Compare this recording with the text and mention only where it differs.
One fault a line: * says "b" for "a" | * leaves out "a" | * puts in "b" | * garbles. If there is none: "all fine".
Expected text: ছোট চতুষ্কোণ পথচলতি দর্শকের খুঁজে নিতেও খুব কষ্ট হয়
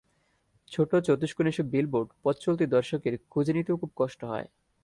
* puts in "এসব বিলবোর্ড"